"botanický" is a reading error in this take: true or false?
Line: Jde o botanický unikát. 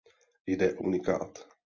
true